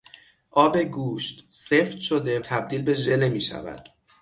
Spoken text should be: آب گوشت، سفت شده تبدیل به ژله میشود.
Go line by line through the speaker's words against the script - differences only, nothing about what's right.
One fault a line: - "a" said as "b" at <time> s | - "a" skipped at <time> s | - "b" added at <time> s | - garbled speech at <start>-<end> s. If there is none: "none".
none